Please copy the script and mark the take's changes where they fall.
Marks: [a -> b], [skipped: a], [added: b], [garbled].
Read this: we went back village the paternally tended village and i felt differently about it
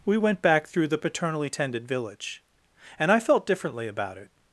we went back [village -> through] the paternally tended village and i felt differently about it